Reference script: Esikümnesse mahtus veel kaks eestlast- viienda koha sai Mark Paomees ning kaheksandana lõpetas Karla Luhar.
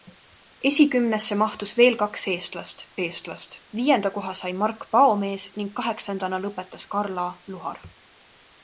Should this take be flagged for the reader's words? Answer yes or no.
yes